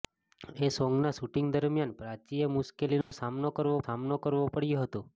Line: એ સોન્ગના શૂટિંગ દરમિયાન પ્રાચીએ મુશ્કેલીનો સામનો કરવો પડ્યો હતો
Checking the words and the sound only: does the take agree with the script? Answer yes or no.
no